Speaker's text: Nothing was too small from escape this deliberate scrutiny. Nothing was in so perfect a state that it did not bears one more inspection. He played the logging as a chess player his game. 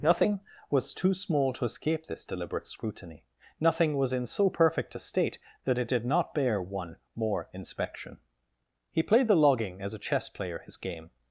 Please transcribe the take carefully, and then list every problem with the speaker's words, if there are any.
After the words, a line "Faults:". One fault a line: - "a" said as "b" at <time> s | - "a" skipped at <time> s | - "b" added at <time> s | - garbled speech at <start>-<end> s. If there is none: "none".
Nothing was too small to escape this deliberate scrutiny. Nothing was in so perfect a state that it did not bear one more inspection. He played the logging as a chess player his game.
Faults:
- "from" said as "to" at 1.5 s
- "bears" said as "bear" at 6.3 s